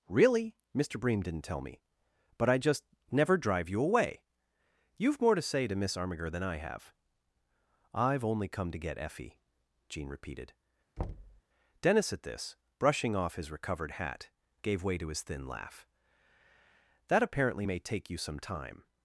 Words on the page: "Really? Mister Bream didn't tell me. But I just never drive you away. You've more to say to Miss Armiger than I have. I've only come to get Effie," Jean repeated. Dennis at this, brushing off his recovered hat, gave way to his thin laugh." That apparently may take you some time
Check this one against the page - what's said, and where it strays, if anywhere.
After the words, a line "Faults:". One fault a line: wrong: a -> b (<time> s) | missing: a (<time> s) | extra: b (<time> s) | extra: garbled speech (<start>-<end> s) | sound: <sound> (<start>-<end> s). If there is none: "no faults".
"Really? Mister Bream didn't tell me. But I just never drive you away. You've more to say to Miss Armiger than I have. I've only come to get Effie," Jean repeated. Dennis at this, brushing off his recovered hat, gave way to his thin laugh." That apparently may take you some time
Faults:
sound: thud (11.0-11.4 s)